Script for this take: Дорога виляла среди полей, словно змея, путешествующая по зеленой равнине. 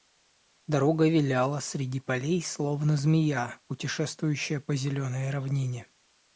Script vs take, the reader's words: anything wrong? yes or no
no